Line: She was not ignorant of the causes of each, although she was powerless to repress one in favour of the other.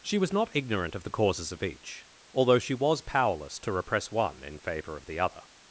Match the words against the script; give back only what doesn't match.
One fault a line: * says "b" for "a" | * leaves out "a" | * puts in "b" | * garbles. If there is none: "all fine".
all fine